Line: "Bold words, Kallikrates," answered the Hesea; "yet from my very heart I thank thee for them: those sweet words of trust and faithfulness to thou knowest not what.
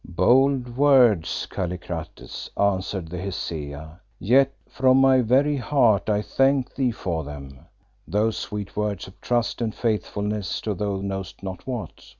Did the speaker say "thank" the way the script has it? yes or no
yes